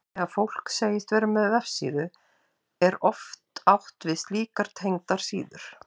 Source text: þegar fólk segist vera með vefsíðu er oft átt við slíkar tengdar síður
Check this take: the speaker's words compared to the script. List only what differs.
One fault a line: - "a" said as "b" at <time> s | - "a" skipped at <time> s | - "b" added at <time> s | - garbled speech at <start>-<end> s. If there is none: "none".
none